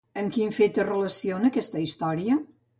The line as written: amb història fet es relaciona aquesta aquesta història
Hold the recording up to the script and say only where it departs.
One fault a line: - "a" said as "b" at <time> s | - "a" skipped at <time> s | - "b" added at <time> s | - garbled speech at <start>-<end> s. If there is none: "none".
- "història" said as "quin" at 0.4 s
- "aquesta" skipped at 1.9 s